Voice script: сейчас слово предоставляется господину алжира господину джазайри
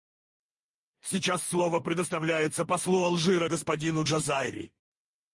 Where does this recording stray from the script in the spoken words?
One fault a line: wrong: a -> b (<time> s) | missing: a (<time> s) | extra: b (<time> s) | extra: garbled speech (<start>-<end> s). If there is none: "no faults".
wrong: господину -> послу (2.6 s)